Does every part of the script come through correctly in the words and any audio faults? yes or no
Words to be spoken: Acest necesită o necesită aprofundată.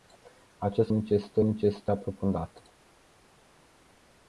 yes